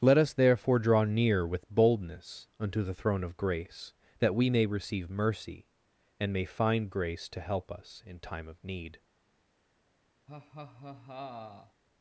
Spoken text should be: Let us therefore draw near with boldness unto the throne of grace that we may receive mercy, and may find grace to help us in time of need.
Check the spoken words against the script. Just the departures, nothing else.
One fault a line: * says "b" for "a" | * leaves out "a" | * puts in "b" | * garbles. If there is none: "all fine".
all fine